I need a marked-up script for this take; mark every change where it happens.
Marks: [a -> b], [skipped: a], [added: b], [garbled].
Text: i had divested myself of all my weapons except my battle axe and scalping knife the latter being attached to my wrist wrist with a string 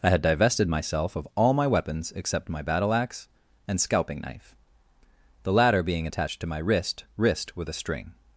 i had divested myself of all my weapons except my battle axe and scalping knife the latter being attached to my wrist wrist with a string